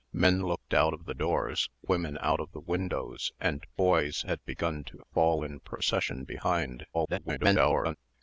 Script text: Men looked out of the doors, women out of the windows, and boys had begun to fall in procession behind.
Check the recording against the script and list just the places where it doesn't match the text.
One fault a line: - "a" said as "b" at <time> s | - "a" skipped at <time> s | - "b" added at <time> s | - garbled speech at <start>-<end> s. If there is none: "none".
- garbled speech at 6.9-8.0 s